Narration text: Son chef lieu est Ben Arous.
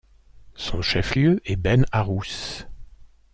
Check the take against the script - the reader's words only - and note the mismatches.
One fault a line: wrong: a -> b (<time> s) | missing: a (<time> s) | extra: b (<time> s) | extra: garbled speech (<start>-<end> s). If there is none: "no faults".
no faults